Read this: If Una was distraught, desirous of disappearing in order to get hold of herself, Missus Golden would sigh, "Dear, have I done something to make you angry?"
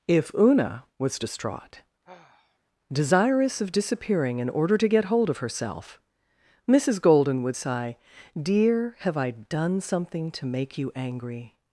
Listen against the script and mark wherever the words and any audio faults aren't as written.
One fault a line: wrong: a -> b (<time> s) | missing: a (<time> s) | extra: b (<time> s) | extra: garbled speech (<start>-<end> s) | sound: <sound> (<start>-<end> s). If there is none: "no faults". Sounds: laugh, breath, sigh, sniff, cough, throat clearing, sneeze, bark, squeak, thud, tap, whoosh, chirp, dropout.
sound: sigh (2.0-2.6 s)